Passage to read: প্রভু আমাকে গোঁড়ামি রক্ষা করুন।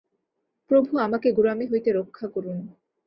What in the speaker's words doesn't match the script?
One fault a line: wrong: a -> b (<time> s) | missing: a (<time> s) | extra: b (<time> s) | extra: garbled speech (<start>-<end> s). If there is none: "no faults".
extra: হইতে (1.6 s)